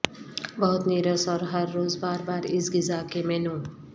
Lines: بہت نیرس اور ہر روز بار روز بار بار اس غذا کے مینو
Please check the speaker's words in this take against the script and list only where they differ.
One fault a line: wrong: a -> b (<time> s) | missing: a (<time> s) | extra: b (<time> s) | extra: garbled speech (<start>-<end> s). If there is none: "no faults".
missing: روز بار (2.2 s)